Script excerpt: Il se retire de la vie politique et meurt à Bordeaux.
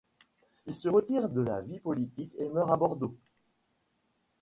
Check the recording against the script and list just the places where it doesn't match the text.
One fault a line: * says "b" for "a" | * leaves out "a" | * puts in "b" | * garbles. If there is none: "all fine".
all fine